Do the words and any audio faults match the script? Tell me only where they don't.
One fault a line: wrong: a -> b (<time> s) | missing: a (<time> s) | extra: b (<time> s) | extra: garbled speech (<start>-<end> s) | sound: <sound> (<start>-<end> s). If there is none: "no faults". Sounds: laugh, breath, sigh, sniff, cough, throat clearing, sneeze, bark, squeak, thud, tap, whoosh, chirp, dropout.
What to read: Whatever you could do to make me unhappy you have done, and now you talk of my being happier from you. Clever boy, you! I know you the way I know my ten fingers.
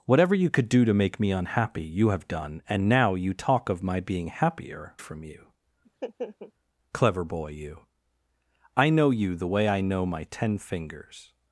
sound: laugh (5.8-6.5 s)